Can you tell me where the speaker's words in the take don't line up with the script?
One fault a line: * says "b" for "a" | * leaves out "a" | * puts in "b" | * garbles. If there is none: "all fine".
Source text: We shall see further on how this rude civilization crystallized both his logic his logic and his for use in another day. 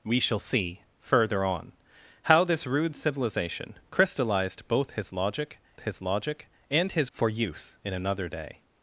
all fine